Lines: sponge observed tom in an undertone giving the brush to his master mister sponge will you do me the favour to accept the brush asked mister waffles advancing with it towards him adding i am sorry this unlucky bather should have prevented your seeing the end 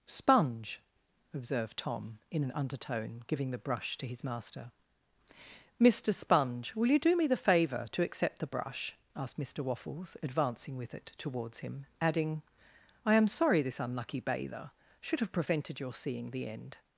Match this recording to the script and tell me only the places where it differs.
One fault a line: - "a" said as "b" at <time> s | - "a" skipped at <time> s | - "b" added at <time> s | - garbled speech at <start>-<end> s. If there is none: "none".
none